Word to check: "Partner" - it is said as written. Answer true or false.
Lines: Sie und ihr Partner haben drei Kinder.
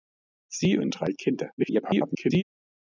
false